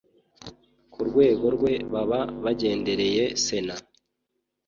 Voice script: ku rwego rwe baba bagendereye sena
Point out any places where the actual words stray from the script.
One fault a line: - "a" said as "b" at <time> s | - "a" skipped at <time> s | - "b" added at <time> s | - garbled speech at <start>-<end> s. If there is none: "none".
none